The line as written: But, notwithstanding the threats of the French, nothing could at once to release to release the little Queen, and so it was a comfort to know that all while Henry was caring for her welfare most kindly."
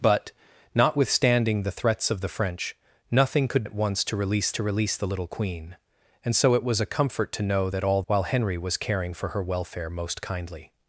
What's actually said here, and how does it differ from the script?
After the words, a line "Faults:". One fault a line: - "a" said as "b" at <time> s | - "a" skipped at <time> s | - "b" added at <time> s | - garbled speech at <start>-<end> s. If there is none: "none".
But, notwithstanding the threats of the French, nothing could at once to release to release the little Queen, and so it was a comfort to know that all while Henry was caring for her welfare most kindly."
Faults:
none